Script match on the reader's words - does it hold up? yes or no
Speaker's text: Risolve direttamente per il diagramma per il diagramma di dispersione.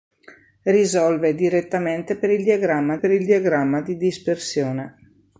yes